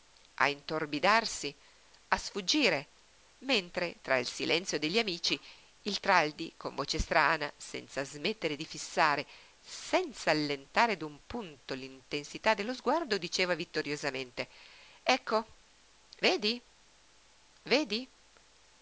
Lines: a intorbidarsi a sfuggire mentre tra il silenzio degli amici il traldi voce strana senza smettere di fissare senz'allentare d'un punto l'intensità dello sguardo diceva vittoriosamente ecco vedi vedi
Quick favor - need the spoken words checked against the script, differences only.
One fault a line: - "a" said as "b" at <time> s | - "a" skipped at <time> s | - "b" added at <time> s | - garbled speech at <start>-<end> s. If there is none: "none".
- "con" added at 6.5 s